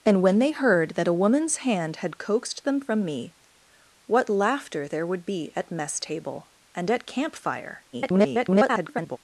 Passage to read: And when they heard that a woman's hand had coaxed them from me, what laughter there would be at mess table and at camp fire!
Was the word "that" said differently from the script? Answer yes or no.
no